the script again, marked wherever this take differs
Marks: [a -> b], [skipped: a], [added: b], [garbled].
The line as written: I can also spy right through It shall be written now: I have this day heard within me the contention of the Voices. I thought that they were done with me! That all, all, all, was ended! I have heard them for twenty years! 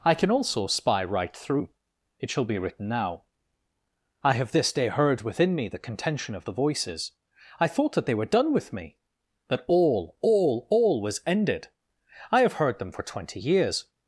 I can also spy right through It shall be written now: I have this day heard within me the contention of the Voices. I thought that they were done with me! That all, all, all, was ended! I have heard them for twenty years!